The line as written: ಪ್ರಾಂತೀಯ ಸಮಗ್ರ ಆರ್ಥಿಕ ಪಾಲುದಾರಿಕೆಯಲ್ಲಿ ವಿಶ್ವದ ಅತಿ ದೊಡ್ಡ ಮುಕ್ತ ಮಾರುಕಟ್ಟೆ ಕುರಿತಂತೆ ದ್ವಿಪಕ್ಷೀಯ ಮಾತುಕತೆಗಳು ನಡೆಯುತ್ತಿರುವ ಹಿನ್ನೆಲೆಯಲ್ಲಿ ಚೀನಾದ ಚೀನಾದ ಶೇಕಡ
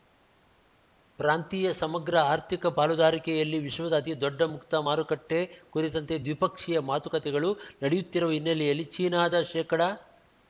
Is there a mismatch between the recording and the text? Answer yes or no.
yes